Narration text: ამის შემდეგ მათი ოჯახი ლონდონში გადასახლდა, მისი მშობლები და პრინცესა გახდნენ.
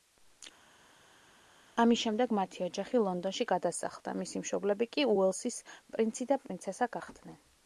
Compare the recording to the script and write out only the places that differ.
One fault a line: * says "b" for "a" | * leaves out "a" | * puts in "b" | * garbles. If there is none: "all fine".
* puts in "კი უელსის პრინცი"